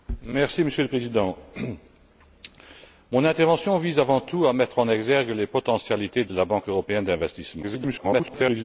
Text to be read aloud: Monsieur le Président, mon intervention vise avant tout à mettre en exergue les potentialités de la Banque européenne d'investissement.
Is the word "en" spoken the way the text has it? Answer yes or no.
yes